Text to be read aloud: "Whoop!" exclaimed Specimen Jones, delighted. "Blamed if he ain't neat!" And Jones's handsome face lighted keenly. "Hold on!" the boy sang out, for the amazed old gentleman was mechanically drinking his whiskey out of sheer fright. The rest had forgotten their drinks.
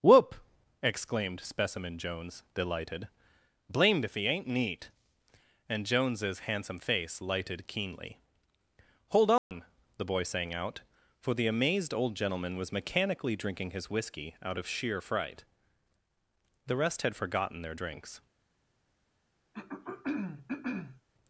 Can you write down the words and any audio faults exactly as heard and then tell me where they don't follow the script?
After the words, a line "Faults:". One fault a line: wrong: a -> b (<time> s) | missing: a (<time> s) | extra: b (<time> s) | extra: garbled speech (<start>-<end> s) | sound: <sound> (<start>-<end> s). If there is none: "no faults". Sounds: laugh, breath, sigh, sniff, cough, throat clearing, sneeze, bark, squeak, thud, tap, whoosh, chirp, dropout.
"Whoop!" exclaimed Specimen Jones, delighted. "Blamed if he ain't neat!" And Jones's handsome face lighted keenly. "Hold on!" the boy sang out, for the amazed old gentleman was mechanically drinking his whiskey out of sheer fright. The rest had forgotten their drinks.
Faults:
sound: dropout (9.4-9.5 s)
sound: throat clearing (19.5-21.0 s)